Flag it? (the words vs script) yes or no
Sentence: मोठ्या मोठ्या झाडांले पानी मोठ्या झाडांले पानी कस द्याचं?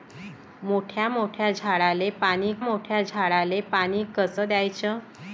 no